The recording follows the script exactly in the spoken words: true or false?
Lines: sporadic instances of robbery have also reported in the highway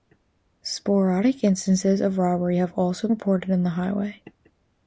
true